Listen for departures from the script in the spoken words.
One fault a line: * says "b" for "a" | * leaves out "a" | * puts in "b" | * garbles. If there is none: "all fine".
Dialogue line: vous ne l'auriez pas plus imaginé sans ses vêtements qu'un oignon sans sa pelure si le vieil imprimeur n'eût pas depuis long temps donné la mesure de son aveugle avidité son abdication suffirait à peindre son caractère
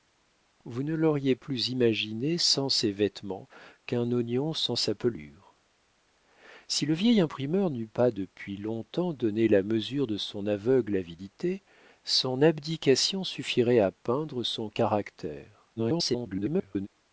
* leaves out "pas"
* garbles